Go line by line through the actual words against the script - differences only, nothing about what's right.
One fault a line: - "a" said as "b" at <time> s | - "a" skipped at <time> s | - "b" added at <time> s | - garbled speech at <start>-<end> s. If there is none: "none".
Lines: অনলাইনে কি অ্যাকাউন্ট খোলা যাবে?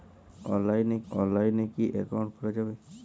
- "অনলাইনে" added at 1.1 s